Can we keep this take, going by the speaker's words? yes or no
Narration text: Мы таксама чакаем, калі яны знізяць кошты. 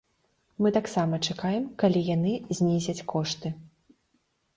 yes